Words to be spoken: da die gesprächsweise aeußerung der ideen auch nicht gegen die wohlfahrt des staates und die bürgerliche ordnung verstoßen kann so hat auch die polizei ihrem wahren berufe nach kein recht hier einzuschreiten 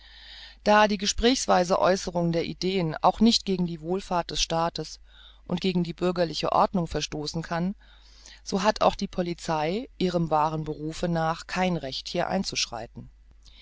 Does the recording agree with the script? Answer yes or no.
no